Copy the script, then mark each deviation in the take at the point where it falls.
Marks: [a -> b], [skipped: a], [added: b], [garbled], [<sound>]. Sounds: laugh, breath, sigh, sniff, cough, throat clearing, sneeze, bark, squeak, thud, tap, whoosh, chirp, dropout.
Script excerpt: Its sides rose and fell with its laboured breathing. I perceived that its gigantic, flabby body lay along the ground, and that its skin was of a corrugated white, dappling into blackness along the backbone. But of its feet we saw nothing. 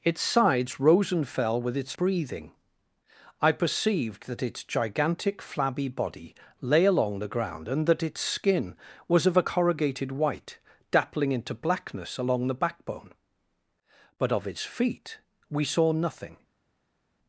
Its sides rose and fell with its [skipped: laboured] breathing. I perceived that its gigantic, flabby body lay along the ground, and that its skin was of a corrugated white, dappling into blackness along the backbone. But of its feet we saw nothing.